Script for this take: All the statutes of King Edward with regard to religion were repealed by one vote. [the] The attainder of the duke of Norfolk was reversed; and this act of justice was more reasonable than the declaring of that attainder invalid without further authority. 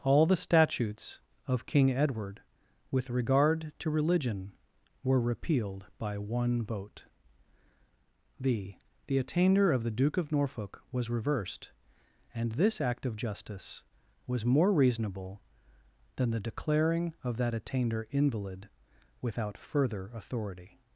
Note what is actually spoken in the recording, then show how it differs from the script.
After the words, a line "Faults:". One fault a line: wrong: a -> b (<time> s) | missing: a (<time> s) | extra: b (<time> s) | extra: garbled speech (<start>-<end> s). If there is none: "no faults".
All the statutes of King Edward with regard to religion were repealed by one vote. [the] The attainder of the duke of Norfolk was reversed; and this act of justice was more reasonable than the declaring of that attainder invalid without further authority.
Faults:
no faults